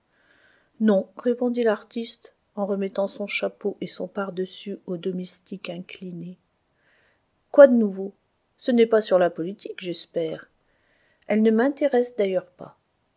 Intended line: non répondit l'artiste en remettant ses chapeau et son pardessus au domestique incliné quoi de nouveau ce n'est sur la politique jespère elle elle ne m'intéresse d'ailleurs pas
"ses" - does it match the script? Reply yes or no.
no